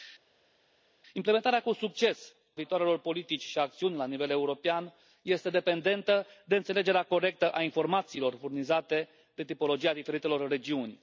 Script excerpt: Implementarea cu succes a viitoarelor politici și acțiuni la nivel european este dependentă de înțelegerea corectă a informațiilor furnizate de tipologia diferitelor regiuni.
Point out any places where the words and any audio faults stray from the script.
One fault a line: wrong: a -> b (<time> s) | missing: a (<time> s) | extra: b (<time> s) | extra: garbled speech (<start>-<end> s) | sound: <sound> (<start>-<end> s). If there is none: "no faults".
missing: a (2.4 s)